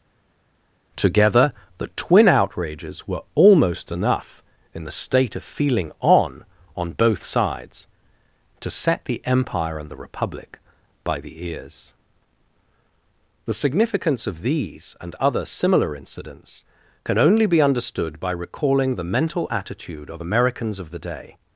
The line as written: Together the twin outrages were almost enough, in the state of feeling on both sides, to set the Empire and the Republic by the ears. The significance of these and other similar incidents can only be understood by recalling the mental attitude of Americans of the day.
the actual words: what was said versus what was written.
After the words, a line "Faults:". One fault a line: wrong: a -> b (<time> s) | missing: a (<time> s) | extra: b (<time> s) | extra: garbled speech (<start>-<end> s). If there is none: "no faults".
Together the twin outrages were almost enough, in the state of feeling on on both sides, to set the Empire and the Republic by the ears. The significance of these and other similar incidents can only be understood by recalling the mental attitude of Americans of the day.
Faults:
extra: on (6.8 s)